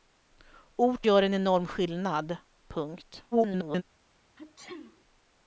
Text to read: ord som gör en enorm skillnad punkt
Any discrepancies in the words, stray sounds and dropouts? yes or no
yes